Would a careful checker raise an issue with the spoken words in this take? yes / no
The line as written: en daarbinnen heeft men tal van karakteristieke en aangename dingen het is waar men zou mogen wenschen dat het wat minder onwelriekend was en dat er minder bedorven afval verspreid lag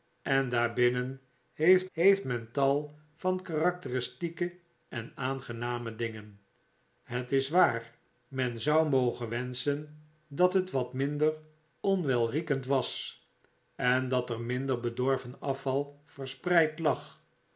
yes